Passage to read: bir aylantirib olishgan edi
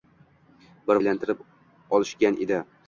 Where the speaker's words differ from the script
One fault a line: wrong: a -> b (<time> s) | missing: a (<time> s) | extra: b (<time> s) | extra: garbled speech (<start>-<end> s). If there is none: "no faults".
no faults